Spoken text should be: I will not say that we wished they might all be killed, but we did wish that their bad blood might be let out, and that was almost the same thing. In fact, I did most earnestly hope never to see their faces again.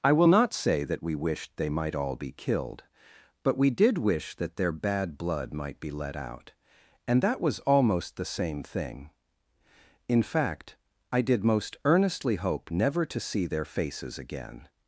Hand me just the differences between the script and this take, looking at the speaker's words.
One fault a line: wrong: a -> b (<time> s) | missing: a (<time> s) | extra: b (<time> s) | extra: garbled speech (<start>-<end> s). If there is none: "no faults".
no faults